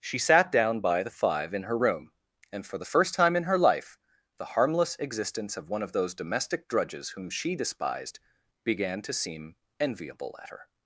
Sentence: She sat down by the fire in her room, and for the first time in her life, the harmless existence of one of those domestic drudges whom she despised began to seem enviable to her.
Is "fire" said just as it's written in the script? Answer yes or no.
no